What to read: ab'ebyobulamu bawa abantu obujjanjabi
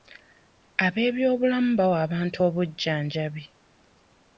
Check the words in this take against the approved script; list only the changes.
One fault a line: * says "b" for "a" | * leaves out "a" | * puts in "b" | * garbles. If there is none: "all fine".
all fine